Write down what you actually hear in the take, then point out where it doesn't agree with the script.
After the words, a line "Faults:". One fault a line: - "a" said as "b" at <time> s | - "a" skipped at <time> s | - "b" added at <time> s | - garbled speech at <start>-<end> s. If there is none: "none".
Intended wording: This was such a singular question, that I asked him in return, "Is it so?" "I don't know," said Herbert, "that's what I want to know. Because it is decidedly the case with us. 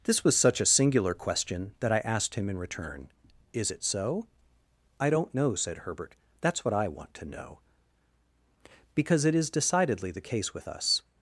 This was such a singular question, that I asked him in return, "Is it so?" "I don't know," said Herbert, "that's what I want to know. Because it is decidedly the case with us.
Faults:
none